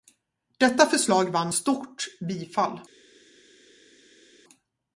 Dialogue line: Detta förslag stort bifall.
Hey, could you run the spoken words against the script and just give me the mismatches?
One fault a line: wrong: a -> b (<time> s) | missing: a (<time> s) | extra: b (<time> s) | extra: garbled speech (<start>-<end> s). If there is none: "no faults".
extra: vann (1.3 s)